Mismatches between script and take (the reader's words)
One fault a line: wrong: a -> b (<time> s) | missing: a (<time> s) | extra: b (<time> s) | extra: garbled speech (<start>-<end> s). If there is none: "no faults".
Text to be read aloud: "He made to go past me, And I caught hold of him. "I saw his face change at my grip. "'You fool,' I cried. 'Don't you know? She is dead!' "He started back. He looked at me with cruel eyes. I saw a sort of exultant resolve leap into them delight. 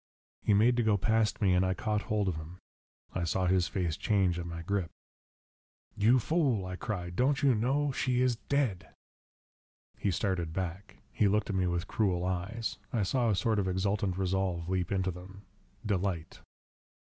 no faults